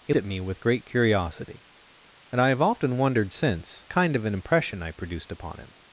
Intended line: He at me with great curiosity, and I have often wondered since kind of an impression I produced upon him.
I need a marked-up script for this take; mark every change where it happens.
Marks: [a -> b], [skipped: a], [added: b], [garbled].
He at me with great curiosity, and I have often wondered since kind of an impression I produced upon him.